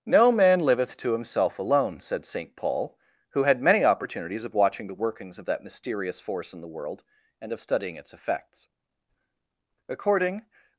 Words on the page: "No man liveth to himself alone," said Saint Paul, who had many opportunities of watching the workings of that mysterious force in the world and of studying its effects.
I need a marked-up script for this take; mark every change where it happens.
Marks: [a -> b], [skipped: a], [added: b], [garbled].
"No man liveth to himself alone," said Saint Paul, who had many opportunities of watching the workings of that mysterious force in the world and of studying its effects. [added: According]